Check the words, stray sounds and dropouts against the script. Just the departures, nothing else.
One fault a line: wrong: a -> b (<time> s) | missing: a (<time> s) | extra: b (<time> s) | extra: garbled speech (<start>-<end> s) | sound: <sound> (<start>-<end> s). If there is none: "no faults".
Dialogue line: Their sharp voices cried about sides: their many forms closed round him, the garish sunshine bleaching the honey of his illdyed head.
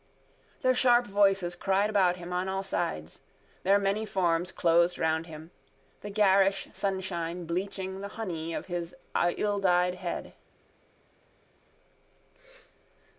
extra: him on all (2.1 s)